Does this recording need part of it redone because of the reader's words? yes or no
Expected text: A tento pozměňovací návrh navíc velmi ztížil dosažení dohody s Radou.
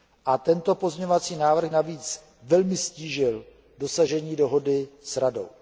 no